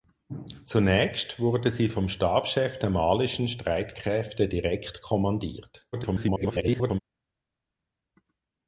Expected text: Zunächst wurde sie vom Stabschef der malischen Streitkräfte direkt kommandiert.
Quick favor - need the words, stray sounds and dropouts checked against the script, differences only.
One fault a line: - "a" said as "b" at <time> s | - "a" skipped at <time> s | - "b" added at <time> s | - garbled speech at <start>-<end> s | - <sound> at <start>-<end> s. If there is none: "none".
- garbled speech at 5.9-7.0 s